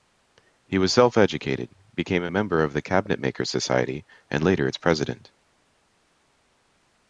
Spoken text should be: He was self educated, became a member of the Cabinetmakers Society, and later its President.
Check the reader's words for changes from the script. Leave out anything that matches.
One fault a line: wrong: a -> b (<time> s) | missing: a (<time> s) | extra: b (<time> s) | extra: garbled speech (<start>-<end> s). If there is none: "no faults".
no faults